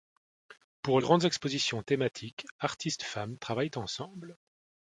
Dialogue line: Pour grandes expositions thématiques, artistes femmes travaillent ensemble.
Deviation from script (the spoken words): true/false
false